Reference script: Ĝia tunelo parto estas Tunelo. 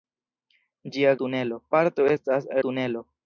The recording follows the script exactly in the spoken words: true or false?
true